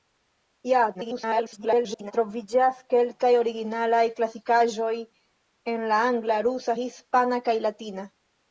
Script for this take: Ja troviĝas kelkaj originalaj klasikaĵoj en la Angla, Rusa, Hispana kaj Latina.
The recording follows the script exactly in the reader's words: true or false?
false